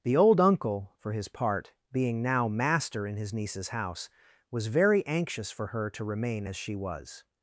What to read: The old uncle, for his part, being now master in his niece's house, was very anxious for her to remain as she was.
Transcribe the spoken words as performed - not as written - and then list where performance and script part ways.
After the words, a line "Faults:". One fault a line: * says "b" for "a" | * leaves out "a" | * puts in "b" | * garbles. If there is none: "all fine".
The old uncle, for his part, being now master in his niece's house, was very anxious for her to remain as she was.
Faults:
all fine